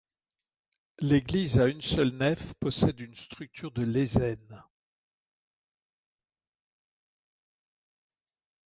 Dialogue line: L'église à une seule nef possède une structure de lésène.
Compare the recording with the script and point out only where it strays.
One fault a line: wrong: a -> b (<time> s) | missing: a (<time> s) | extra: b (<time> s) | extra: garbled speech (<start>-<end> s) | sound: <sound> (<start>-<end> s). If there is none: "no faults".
no faults